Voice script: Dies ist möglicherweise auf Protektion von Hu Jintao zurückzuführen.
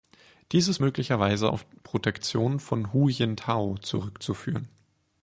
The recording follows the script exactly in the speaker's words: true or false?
true